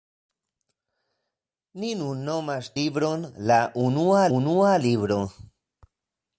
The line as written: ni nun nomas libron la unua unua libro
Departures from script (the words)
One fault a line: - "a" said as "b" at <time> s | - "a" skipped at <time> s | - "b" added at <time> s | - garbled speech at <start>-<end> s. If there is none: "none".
none